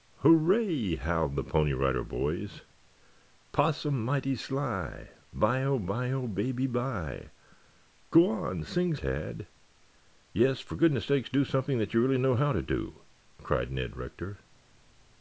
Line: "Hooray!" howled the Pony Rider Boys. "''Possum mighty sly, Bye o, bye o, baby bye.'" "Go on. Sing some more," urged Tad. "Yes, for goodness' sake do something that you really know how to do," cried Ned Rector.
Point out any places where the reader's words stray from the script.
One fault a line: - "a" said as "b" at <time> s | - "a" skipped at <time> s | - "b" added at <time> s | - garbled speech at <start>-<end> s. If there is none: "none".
- "some more urged" skipped at 8.9 s